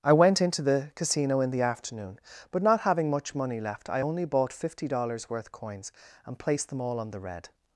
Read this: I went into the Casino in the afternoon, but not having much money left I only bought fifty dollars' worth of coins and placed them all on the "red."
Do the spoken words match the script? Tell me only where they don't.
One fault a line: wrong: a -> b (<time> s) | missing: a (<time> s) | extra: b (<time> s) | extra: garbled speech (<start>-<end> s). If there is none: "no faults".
missing: of (5.5 s)